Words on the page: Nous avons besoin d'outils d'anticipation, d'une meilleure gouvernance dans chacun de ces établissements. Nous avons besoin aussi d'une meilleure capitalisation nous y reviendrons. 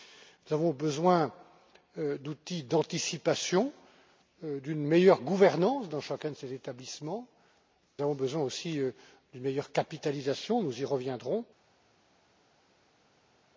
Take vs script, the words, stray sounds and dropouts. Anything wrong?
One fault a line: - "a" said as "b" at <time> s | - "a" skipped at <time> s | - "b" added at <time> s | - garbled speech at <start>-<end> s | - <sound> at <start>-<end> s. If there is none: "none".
- "Nous" skipped at 7.3 s